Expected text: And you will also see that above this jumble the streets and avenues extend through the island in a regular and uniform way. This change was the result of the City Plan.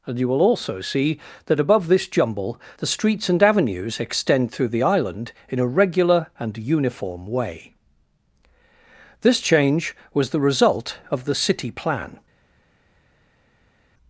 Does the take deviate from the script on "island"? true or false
false